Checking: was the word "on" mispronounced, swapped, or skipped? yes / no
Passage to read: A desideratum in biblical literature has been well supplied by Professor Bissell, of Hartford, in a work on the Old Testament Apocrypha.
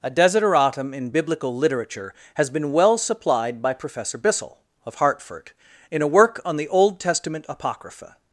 no